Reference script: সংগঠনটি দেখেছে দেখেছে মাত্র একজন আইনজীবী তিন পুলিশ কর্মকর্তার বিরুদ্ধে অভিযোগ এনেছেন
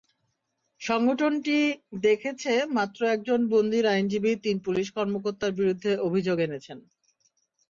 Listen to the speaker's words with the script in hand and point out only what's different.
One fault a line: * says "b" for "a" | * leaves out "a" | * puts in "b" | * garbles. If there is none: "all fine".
* leaves out "দেখেছে"
* puts in "বন্দীর"